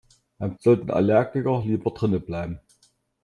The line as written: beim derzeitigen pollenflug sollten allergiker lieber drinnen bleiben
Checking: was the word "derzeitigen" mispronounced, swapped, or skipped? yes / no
yes